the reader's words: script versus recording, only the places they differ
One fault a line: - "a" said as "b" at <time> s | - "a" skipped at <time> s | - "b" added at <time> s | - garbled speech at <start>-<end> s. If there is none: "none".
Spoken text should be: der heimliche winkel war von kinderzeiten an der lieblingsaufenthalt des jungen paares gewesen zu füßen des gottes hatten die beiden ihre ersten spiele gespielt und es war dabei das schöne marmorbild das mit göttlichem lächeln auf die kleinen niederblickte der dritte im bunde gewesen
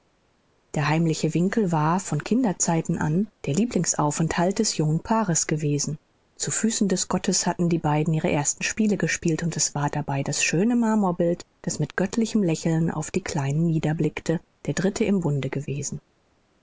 none